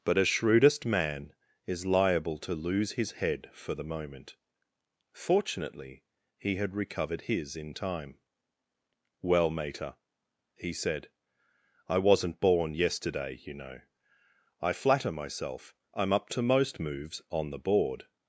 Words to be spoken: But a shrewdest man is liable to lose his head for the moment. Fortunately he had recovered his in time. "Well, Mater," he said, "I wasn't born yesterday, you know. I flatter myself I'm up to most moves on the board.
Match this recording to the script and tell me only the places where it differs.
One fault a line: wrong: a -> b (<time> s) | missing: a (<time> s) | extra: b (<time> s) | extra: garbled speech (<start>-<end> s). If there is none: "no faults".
no faults